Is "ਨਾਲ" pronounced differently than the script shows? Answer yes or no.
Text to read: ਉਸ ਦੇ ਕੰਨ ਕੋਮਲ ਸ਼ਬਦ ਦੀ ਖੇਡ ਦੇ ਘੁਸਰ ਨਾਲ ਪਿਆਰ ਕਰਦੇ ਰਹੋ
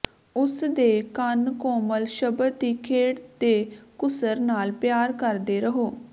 no